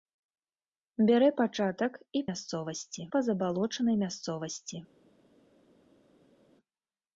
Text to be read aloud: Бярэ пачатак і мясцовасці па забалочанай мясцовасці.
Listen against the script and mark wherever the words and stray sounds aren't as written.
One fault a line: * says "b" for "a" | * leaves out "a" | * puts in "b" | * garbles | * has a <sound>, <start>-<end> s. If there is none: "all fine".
all fine